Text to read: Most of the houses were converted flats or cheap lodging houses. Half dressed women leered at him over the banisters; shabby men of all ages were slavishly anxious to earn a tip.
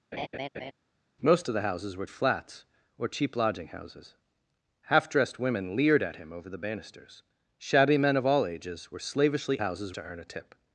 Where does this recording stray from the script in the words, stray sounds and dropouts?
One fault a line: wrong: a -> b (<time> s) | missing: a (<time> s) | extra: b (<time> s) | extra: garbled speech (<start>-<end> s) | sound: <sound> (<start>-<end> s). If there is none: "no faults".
sound: laugh (0.1-0.7 s)
missing: converted (2.1 s)
wrong: anxious -> houses (9.6 s)